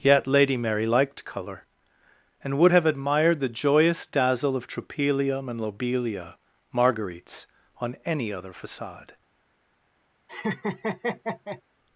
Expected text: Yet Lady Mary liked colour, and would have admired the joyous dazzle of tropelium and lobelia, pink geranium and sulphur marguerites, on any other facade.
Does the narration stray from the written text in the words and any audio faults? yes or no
yes